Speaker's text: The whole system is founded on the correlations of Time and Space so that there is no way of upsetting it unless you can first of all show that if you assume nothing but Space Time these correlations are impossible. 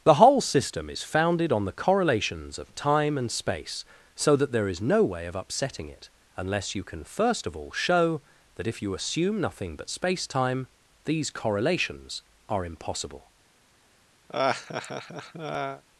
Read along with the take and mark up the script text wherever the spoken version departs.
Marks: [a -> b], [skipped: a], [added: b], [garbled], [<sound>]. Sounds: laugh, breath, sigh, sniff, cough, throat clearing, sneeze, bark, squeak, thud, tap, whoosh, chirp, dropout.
The whole system is founded on the correlations of Time and Space so that there is no way of upsetting it unless you can first of all show that if you assume nothing but Space Time these correlations are impossible. [laugh]